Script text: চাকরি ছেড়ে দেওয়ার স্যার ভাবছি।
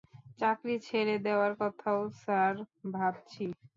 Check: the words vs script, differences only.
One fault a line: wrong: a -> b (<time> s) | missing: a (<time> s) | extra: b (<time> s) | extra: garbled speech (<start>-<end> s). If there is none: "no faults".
extra: কথাও (1.6 s)